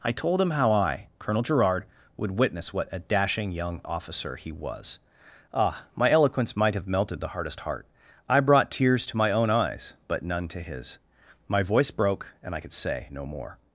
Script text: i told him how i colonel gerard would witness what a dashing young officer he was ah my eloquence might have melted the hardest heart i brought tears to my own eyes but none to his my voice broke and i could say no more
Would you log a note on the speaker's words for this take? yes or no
no